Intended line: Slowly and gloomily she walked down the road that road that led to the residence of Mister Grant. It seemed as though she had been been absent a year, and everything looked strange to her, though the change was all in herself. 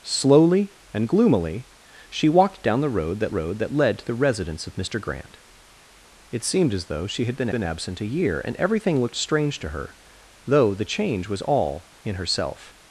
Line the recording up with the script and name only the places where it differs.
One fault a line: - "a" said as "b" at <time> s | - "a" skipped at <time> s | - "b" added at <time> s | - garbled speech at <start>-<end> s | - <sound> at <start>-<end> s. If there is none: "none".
none